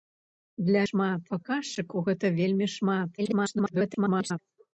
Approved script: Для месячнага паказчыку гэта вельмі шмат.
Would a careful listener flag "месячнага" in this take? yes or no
yes